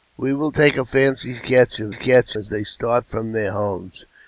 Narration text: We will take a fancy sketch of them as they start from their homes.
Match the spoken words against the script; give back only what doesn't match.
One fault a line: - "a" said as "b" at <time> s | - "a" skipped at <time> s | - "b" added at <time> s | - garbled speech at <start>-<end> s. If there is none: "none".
- "them" said as "sketch" at 1.9 s